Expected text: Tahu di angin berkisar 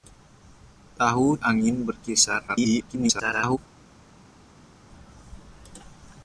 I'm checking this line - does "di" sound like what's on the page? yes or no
no